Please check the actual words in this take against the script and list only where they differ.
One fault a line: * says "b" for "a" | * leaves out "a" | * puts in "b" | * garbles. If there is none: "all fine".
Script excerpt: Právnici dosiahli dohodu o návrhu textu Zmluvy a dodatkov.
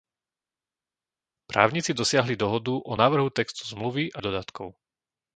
all fine